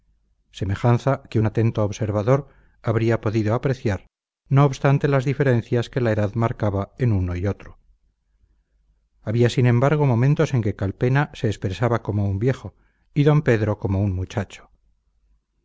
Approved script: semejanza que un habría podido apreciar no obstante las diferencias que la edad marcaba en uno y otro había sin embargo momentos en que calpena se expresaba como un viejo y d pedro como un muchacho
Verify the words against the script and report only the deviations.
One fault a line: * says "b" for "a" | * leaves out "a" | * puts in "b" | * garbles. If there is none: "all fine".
* puts in "atento observador"